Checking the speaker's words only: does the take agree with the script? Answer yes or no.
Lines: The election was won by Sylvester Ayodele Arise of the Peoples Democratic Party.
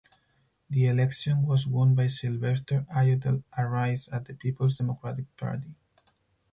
yes